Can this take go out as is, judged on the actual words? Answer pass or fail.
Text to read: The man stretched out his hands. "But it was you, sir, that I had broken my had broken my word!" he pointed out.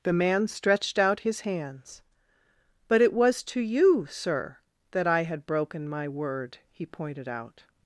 fail